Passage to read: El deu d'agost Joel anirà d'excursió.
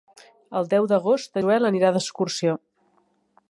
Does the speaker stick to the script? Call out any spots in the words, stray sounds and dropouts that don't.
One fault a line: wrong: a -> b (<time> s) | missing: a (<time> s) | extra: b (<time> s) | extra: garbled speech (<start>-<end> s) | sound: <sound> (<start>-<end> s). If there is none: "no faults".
no faults